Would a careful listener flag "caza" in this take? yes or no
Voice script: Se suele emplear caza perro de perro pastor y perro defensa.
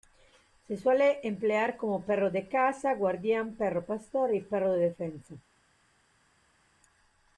yes